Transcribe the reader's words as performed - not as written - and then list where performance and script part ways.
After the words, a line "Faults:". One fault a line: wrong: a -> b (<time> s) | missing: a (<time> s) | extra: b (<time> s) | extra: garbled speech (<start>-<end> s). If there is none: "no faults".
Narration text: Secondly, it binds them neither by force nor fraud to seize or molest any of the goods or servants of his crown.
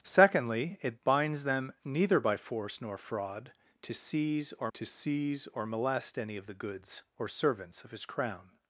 Secondly, it binds them neither by force nor fraud to seize or to seize or molest any of the goods or servants of his crown.
Faults:
extra: to seize or (4.7 s)